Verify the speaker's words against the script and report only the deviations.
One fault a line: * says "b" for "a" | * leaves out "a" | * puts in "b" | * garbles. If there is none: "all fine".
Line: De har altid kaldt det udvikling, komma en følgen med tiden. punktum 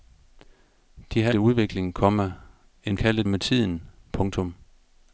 * leaves out "altid kaldt"
* says "kaldt" for "følgen"